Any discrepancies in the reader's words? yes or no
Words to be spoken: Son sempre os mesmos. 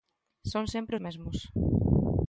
yes